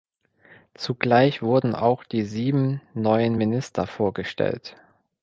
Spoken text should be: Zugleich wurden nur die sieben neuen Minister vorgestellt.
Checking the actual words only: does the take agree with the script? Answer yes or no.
no